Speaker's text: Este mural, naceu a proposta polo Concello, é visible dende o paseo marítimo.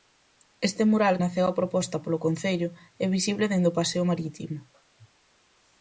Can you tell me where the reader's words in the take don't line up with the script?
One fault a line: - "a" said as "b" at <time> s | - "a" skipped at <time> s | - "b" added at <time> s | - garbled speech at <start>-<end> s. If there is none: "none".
none